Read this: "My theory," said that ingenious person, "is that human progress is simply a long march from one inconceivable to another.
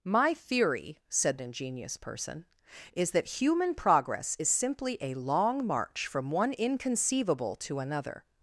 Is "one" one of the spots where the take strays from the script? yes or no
no